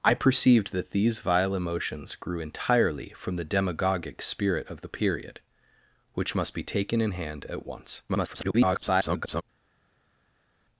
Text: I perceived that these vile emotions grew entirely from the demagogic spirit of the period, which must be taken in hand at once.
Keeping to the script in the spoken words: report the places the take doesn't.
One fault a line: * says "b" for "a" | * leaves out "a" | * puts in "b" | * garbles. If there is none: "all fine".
* garbles